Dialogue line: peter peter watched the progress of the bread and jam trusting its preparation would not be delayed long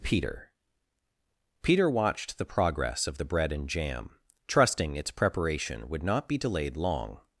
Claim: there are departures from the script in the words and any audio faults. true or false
false